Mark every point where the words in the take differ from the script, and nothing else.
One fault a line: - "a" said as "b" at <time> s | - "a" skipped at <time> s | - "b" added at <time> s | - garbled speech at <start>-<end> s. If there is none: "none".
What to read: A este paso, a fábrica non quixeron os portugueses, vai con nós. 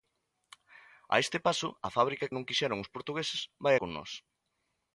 none